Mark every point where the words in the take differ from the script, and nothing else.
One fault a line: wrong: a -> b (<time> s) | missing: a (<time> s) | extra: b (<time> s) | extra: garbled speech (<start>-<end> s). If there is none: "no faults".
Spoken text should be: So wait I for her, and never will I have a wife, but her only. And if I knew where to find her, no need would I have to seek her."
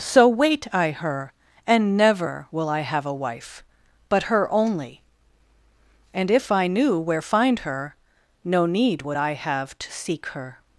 missing: for (0.9 s)
missing: to (7.2 s)